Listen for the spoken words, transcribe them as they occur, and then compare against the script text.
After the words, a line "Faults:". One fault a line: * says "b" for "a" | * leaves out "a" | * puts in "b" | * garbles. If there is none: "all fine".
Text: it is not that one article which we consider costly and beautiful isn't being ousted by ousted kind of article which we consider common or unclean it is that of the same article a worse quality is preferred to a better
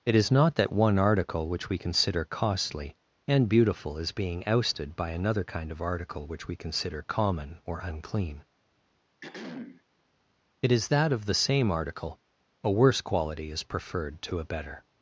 it is not that one article which we consider costly and beautiful is being ousted by another kind of article which we consider common or unclean it is that of the same article a worse quality is preferred to a better
Faults:
* says "is" for "isn't"
* says "another" for "ousted"